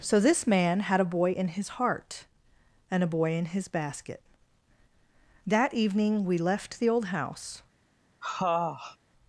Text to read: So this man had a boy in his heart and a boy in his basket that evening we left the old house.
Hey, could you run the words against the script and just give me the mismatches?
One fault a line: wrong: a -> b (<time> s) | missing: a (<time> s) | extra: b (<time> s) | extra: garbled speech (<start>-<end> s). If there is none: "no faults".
no faults